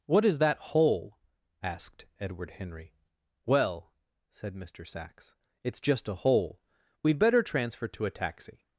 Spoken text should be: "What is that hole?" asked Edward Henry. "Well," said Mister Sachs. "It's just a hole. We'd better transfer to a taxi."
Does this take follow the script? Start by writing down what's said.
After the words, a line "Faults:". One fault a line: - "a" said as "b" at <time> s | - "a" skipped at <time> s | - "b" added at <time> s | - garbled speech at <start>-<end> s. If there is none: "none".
"What is that hole?" asked Edward Henry. "Well," said Mister Sachs. "It's just a hole. We'd better transfer to a taxi."
Faults:
none